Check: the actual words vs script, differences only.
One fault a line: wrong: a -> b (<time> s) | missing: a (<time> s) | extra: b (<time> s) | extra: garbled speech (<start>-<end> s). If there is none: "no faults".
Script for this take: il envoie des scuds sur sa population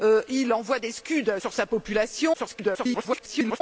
extra: garbled speech (2.3-3.6 s)